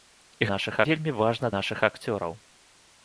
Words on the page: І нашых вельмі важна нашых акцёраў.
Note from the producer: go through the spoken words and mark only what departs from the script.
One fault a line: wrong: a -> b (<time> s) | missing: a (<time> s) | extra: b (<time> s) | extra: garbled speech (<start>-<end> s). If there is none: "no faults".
no faults